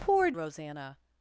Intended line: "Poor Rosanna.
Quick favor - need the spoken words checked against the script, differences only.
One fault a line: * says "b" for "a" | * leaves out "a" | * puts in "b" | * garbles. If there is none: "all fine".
all fine